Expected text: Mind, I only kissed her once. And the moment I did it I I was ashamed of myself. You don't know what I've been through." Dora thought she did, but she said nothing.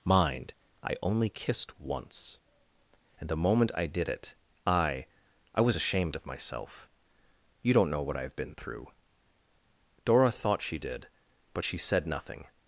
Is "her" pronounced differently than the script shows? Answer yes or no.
yes